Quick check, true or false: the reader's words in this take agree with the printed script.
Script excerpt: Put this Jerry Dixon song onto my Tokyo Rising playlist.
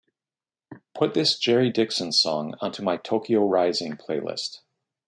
true